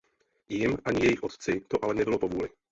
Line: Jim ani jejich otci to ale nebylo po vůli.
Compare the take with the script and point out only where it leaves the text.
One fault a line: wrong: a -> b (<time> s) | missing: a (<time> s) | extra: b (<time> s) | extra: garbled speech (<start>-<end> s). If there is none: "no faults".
no faults